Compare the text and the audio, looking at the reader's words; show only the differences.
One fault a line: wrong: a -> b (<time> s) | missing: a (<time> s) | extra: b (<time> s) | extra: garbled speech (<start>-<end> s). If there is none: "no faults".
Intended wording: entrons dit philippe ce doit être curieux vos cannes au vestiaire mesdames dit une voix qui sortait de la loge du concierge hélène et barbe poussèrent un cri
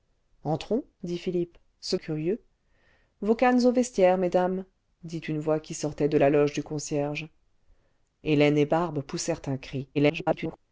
missing: doit être (1.9 s)
extra: garbled speech (9.9-10.6 s)